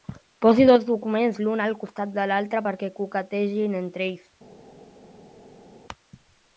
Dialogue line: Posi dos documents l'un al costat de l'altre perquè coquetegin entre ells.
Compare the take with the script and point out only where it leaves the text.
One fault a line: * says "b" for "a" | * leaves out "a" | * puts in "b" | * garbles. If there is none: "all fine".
all fine